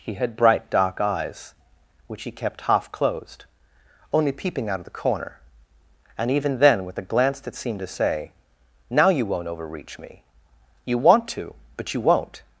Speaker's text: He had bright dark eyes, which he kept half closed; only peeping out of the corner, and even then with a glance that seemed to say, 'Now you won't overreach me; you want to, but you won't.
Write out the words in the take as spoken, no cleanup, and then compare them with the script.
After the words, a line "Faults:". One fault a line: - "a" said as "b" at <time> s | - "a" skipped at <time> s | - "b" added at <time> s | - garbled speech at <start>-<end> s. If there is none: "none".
He had bright dark eyes, which he kept half closed; only peeping out of the corner, and even then with a glance that seemed to say, 'Now you won't overreach me; you want to, but you won't.
Faults:
none